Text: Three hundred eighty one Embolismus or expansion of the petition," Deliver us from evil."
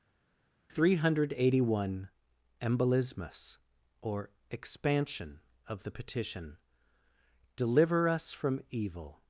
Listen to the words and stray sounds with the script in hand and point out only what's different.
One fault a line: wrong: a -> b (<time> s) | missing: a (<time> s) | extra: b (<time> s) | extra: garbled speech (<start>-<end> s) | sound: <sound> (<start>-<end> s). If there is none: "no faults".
no faults